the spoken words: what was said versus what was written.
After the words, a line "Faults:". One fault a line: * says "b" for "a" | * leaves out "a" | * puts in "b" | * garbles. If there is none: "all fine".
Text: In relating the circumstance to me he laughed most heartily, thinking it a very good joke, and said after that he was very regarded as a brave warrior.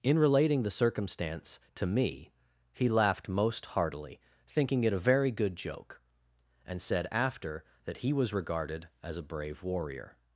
In relating the circumstance to me he laughed most heartily, thinking it a very good joke, and said after that he was regarded as a brave warrior.
Faults:
* leaves out "very"